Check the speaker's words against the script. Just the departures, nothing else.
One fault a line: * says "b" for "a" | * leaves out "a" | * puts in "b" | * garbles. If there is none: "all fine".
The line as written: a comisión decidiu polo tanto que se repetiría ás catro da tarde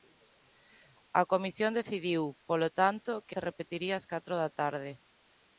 all fine